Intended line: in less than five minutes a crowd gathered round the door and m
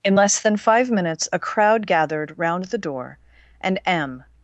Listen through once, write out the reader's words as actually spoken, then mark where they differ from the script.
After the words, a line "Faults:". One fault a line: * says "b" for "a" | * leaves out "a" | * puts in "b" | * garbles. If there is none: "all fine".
in less than five minutes a crowd gathered round the door and m
Faults:
all fine